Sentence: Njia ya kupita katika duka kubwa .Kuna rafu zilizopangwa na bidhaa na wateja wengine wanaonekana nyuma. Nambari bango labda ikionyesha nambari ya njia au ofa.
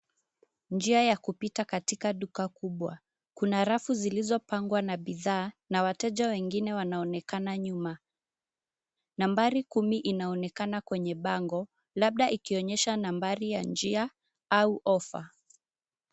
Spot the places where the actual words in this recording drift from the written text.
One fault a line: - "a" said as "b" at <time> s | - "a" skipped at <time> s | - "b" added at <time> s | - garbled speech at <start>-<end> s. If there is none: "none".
- "kumi inaonekana kwenye" added at 9.6 s